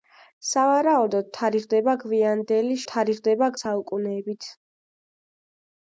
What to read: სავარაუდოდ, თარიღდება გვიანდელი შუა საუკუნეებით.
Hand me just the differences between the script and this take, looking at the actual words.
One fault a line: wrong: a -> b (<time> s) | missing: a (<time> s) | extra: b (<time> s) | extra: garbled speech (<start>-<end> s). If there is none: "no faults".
wrong: შუა -> თარიღდება (2.9 s)